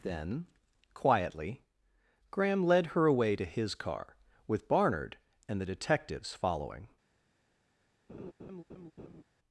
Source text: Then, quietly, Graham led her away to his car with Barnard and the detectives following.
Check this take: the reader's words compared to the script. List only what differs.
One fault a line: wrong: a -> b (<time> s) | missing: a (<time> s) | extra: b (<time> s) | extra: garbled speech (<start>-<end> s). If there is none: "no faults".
no faults